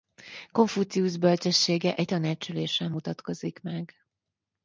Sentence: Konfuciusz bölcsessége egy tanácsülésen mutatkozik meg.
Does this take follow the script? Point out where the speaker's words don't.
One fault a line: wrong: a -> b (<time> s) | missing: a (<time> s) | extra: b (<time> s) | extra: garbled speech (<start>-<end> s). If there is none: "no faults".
no faults